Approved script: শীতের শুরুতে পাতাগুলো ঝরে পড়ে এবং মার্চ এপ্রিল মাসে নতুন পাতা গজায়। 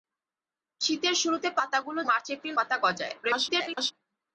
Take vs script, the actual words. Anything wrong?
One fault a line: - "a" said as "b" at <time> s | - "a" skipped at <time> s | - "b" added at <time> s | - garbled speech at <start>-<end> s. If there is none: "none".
- "ঝরে পড়ে এবং" skipped at 2.0 s
- "মাসে নতুন" skipped at 2.6 s
- garbled speech at 3.2-3.9 s